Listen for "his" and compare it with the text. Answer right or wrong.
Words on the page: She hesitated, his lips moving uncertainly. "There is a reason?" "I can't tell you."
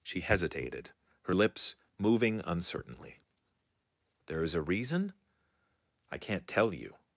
wrong